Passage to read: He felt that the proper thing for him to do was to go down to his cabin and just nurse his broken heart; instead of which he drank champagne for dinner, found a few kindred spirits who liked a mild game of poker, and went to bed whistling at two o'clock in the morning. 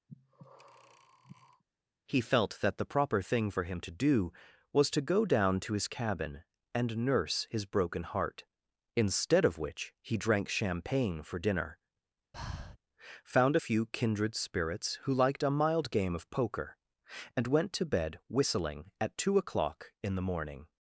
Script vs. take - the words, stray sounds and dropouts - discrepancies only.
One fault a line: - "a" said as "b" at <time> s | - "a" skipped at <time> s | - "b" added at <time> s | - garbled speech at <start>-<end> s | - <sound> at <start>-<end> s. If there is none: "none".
- breath at 0.1-1.6 s
- "just" skipped at 7.0 s
- breath at 12.3-12.8 s